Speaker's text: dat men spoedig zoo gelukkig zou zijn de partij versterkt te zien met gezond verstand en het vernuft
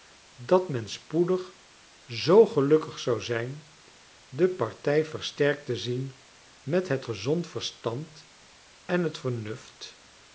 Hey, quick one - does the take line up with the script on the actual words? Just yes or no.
no